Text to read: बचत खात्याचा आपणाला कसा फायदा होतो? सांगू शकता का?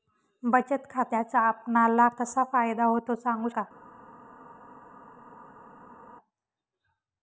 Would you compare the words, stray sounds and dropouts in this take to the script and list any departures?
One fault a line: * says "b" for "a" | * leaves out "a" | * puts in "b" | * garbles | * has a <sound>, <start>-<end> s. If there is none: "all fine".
* leaves out "शकता"